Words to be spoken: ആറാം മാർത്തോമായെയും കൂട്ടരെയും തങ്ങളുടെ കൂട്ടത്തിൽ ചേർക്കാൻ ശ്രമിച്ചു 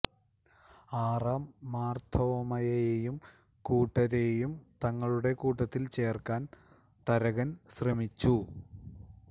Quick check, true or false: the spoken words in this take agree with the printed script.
false